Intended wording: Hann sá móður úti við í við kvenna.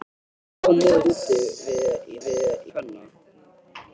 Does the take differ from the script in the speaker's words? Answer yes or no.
no